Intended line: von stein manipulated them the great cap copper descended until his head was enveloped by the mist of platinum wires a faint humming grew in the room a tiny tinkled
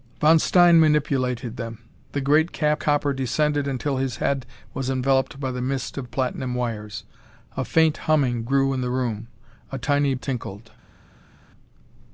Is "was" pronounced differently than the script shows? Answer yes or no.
no